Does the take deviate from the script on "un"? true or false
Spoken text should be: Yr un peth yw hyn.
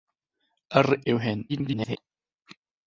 true